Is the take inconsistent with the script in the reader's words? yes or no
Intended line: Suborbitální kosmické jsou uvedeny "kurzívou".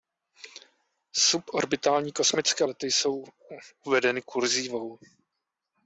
yes